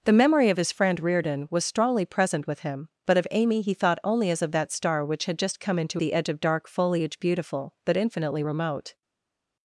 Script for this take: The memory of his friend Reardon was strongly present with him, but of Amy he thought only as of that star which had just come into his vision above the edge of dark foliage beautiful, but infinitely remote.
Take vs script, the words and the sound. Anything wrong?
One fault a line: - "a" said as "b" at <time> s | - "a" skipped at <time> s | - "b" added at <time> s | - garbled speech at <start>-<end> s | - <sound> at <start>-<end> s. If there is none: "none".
- "his vision above" skipped at 6.0 s